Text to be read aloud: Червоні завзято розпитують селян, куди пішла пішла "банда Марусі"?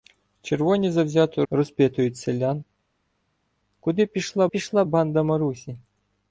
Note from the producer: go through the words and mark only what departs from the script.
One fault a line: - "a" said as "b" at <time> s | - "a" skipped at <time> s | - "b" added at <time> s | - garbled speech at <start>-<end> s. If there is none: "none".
none